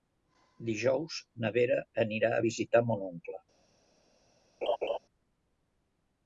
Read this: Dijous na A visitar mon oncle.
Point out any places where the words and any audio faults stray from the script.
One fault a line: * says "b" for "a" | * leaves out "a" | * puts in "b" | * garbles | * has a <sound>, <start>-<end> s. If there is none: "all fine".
* puts in "Vera anirà"
* has a laugh, 4.6-5.0 s